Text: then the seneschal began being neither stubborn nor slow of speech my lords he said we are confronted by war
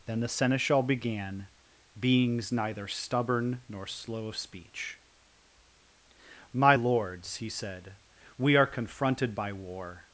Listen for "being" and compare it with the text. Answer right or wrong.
wrong